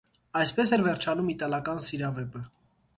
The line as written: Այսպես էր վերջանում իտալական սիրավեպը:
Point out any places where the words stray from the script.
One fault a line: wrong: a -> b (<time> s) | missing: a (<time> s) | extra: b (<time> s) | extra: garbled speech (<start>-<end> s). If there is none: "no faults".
no faults